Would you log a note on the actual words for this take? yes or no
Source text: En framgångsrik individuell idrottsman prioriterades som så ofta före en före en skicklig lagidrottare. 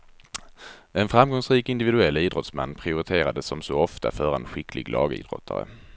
yes